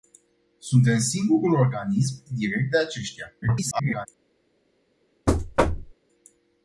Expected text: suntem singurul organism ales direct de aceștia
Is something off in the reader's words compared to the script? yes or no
yes